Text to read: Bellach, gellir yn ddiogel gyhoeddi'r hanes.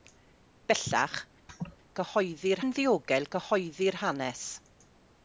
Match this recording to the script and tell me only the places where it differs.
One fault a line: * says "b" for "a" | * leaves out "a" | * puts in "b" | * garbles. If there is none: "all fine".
* says "gyhoeddi'r" for "gellir"